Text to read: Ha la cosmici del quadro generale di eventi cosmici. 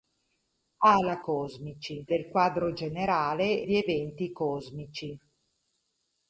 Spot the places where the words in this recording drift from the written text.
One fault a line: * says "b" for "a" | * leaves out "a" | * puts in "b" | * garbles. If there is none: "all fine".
all fine